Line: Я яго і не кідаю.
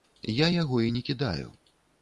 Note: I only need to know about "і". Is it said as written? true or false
true